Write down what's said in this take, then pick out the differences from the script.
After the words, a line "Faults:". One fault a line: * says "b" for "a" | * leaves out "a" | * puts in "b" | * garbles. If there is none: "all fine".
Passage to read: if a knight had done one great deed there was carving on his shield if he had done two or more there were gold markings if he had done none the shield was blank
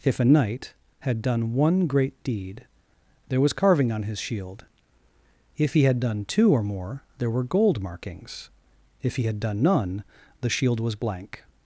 if a knight had done one great deed there was carving on his shield if he had done two or more there were gold markings if he had done none the shield was blank
Faults:
all fine